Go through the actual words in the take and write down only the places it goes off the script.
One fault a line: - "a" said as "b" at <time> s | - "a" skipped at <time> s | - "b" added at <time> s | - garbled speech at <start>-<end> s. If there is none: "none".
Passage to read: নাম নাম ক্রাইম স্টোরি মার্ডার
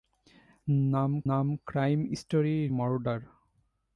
none